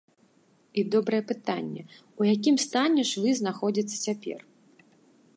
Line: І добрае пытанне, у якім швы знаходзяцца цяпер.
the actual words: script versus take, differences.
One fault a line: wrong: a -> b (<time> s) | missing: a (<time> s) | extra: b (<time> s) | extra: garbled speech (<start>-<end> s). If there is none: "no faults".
extra: стане (2.6 s)